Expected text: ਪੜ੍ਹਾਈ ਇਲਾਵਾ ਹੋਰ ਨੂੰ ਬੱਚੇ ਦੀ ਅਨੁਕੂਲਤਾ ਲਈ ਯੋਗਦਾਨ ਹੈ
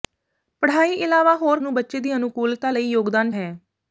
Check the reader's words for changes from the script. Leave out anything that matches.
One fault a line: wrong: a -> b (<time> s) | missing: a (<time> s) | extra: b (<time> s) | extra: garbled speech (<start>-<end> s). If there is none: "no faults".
no faults